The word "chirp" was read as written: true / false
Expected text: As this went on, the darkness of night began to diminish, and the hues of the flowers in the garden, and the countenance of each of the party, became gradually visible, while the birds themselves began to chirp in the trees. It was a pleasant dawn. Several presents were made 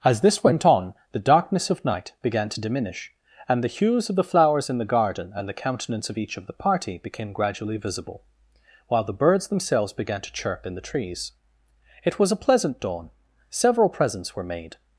true